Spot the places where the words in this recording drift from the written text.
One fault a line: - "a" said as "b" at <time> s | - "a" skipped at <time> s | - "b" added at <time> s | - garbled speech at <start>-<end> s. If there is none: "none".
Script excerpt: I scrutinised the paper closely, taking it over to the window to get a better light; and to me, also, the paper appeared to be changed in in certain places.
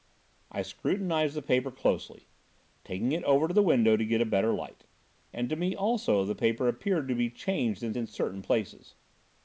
none